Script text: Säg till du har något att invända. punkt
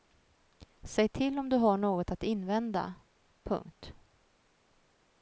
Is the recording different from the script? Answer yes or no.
yes